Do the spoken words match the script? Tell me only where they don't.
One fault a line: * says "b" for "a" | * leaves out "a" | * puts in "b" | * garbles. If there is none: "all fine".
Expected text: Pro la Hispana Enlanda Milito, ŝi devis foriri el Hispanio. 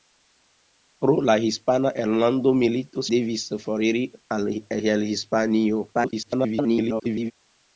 * leaves out "ŝi"
* garbles